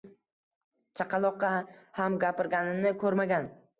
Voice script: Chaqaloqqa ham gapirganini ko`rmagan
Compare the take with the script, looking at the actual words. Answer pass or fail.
pass